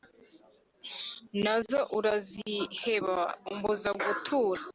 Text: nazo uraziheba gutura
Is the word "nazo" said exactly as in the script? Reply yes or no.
yes